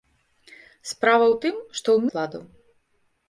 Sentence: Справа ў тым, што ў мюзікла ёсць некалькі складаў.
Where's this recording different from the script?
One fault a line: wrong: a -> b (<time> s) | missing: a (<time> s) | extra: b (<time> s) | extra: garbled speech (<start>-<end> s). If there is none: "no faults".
missing: мюзікла ёсць некалькі (2.1 s)